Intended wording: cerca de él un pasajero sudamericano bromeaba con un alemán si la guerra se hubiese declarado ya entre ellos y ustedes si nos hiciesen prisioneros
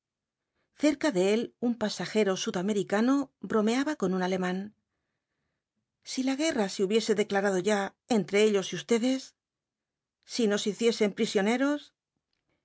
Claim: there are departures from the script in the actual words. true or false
false